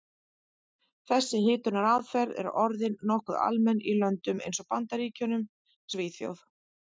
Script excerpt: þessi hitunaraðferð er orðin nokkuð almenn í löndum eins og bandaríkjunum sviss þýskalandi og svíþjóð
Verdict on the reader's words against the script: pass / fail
fail